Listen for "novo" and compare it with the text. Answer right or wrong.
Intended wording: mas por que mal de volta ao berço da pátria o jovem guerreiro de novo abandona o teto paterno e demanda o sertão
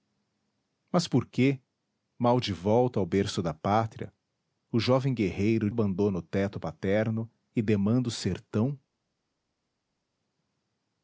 wrong